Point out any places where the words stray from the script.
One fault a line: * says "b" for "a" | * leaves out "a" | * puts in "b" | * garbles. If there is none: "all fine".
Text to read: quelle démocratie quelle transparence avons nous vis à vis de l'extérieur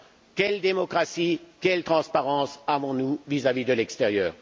all fine